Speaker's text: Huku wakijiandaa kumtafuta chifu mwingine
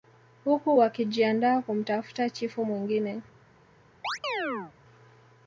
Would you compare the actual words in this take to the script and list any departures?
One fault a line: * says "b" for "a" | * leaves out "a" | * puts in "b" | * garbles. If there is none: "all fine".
all fine